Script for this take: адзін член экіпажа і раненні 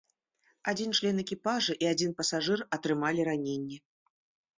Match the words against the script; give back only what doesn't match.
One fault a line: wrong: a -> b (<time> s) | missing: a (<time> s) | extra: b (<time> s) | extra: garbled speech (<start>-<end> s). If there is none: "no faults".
extra: адзін пасажыр атрымалі (1.9 s)